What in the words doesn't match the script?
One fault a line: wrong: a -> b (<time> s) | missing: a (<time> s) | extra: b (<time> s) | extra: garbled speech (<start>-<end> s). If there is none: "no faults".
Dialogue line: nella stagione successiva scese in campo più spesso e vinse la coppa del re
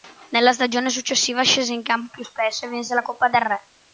no faults